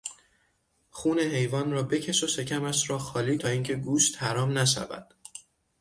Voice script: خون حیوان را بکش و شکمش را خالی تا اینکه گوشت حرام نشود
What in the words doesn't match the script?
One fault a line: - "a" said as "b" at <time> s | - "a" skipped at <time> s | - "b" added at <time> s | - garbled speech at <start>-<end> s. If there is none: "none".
none